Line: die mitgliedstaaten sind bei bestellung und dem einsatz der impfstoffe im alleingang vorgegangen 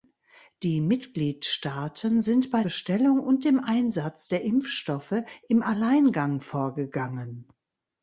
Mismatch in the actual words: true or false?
false